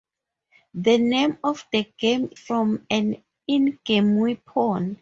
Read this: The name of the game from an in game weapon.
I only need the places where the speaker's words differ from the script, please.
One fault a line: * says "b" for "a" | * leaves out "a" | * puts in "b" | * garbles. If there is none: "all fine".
all fine